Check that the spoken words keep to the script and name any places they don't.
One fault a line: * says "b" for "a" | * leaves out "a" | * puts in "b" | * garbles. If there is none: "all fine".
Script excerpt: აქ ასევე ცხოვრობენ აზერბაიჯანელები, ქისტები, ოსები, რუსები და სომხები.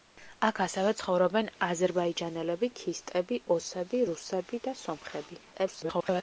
* garbles